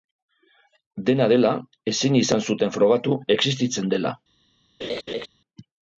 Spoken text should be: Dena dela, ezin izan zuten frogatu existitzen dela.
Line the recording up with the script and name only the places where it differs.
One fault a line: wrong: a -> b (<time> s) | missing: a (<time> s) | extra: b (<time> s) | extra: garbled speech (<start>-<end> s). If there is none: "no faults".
no faults